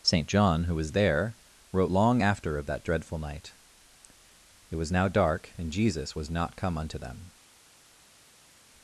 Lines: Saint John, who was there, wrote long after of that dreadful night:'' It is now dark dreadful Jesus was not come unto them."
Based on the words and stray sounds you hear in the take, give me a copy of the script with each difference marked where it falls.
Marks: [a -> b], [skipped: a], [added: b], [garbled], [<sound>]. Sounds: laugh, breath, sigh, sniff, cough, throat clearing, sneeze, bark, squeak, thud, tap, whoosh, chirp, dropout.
Saint John, who was there, wrote long after of that dreadful night:'' It [is -> was] now dark [dreadful -> and] Jesus was not come unto them."